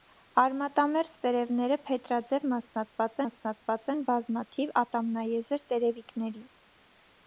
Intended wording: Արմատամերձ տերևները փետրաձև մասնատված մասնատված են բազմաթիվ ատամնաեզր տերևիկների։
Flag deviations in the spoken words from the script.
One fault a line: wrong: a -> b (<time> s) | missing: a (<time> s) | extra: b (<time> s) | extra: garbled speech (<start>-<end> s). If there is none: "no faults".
no faults